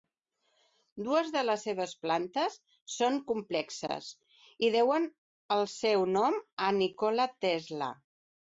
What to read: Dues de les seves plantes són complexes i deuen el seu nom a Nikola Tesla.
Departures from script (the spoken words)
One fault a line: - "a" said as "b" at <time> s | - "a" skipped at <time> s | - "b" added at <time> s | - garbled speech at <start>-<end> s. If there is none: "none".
none